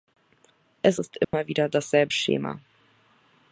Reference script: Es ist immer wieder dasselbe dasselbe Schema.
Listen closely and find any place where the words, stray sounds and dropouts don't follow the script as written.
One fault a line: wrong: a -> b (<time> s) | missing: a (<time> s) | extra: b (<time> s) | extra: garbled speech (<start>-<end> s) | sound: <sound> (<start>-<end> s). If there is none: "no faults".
sound: dropout (1.2-1.3 s)
missing: dasselbe (2.1 s)